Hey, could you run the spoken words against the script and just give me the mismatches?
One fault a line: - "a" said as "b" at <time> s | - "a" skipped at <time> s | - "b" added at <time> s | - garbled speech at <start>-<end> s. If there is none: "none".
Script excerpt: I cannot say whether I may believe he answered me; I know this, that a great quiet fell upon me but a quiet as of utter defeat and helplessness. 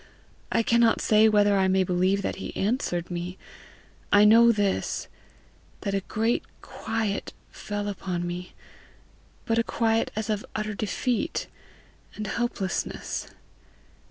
- "that" added at 2.2 s